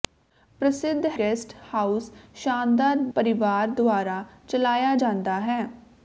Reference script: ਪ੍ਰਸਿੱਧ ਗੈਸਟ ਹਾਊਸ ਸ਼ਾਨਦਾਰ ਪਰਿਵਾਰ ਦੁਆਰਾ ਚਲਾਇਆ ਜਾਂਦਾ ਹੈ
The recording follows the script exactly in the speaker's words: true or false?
true